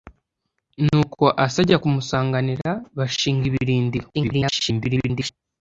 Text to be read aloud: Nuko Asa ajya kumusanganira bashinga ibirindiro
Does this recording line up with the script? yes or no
no